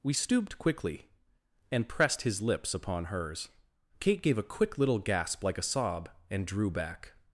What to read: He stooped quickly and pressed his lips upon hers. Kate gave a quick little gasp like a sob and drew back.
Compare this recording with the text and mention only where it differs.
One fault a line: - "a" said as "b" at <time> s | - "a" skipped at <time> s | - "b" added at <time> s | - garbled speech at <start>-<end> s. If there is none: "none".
- "He" said as "We" at 0.0 s